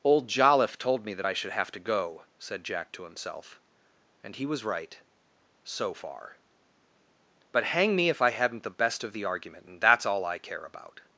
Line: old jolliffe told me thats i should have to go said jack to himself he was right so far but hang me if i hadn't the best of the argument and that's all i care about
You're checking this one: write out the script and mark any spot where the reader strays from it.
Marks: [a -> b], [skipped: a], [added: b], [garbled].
old jolliffe told me [thats -> that] i should have to go said jack to himself [added: and] he was right so far but hang me if i hadn't the best of the argument and that's all i care about